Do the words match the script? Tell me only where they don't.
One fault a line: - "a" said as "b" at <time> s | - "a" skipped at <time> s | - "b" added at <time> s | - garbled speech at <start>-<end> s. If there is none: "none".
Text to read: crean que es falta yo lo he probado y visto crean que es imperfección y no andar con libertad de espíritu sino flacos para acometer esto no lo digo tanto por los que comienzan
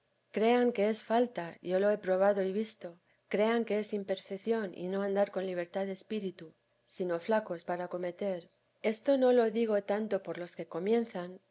none